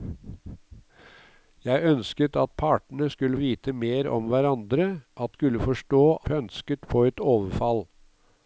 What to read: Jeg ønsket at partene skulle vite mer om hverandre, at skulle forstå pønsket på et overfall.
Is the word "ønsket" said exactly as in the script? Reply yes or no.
yes